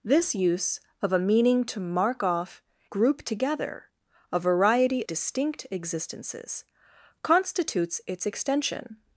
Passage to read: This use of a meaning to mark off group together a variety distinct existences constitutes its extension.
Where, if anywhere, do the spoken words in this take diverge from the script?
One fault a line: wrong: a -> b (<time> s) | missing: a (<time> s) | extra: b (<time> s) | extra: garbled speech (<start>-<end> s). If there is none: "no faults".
no faults